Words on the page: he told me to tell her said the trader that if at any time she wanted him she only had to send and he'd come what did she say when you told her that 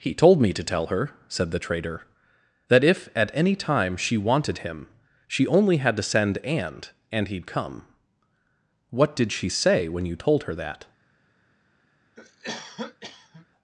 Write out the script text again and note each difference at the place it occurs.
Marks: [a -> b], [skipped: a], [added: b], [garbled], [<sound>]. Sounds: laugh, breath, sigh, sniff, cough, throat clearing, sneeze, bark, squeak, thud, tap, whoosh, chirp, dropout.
he told me to tell her said the trader that if at any time she wanted him she only had to send and [added: and] he'd come what did she say when you told her that [cough]